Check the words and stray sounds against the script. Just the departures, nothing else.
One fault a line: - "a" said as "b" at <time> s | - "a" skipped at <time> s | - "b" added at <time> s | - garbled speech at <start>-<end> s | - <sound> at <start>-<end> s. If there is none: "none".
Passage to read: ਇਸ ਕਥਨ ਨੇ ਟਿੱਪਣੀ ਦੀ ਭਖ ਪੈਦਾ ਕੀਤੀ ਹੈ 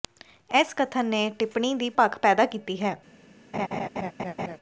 - laugh at 3.5-4.6 s